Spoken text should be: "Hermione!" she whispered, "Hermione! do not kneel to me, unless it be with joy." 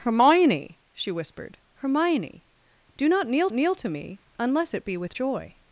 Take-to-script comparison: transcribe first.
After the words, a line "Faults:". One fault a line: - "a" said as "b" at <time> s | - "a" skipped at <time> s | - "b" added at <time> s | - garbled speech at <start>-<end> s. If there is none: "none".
"Hermione!" she whispered, "Hermione! do not kneel kneel to me, unless it be with joy."
Faults:
- "kneel" added at 3.5 s